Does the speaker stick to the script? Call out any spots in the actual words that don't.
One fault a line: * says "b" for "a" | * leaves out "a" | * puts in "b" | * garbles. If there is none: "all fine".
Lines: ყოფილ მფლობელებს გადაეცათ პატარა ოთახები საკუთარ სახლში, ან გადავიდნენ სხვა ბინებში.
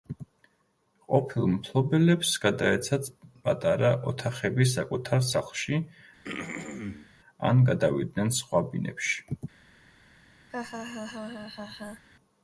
all fine